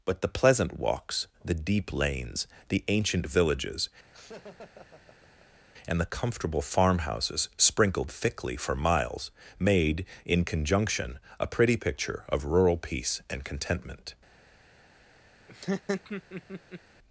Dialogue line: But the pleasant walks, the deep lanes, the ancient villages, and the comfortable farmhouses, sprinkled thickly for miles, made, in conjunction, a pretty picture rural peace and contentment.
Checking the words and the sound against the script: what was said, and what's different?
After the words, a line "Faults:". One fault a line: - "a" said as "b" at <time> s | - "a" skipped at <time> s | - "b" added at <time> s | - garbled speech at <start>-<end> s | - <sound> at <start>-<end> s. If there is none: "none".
But the pleasant walks, the deep lanes, the ancient villages, and the comfortable farmhouses, sprinkled thickly for miles, made, in conjunction, a pretty picture of rural peace and contentment.
Faults:
- laugh at 4.1-5.6 s
- "of" added at 12.3 s
- laugh at 15.5-16.8 s